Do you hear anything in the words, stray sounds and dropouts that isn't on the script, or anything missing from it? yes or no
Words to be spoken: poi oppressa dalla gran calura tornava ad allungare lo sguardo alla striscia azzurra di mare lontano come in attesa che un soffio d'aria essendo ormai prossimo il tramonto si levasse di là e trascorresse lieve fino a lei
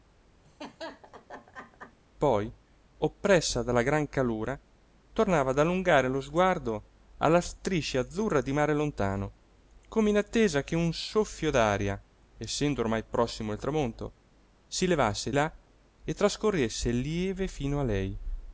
yes